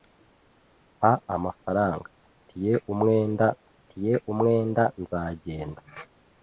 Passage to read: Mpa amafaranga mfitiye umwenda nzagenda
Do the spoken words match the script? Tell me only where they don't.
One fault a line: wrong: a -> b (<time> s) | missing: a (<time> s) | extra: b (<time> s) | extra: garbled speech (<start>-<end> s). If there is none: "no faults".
extra: mfitiye umwenda (3.7 s)